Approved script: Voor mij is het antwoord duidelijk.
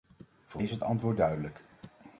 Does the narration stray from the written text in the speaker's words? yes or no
yes